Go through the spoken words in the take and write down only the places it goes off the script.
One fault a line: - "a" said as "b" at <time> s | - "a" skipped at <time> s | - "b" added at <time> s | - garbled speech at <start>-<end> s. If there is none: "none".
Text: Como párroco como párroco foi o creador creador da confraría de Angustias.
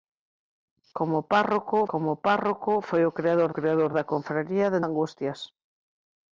none